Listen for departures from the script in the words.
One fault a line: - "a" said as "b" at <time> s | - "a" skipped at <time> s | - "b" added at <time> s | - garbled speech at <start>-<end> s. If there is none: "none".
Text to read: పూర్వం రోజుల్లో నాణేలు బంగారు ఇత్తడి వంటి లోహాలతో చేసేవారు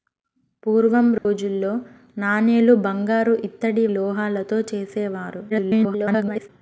- "వంటి" skipped at 3.9 s
- garbled speech at 5.5-6.5 s